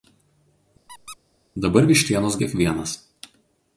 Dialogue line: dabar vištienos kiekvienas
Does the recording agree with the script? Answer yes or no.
yes